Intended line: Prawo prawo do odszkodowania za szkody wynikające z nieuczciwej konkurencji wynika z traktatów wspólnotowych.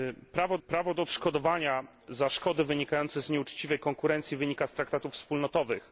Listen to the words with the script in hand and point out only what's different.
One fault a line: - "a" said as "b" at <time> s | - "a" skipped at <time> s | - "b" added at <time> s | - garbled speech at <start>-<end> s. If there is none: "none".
none